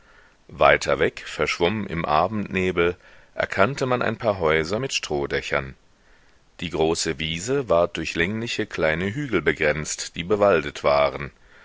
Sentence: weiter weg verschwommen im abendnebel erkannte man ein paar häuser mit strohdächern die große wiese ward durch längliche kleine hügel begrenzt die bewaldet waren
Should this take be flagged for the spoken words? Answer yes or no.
no